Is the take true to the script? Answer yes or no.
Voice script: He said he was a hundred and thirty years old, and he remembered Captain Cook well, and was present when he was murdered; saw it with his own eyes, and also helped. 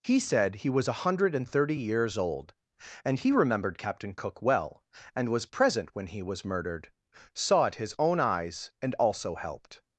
no